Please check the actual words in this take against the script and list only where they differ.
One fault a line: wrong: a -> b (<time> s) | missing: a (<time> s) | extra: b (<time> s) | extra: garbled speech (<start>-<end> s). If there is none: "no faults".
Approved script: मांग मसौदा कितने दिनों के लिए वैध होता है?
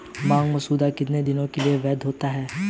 no faults